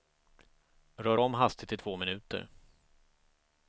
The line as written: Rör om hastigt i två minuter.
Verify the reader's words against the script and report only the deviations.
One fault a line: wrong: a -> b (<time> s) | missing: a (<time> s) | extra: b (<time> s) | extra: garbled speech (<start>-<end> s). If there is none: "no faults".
no faults